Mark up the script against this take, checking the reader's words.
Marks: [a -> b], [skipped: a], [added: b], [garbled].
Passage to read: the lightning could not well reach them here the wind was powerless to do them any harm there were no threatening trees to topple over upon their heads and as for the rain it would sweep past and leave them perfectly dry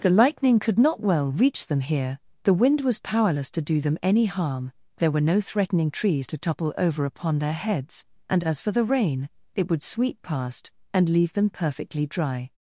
the lightning could not well reach them here the wind was powerless to do them any harm there were no threatening trees to topple over upon their heads and as for the rain it would sweep past and leave them perfectly dry